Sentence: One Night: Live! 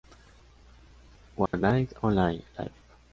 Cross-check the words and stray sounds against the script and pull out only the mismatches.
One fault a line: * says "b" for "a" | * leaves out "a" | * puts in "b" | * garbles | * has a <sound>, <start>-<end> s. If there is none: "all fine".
* has a dropout, 1.5-1.5 s
* puts in "Only"